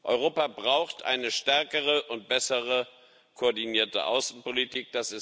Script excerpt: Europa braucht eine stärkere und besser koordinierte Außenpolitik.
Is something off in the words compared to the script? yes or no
no